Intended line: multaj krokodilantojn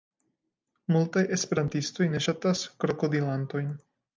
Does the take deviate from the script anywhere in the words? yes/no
yes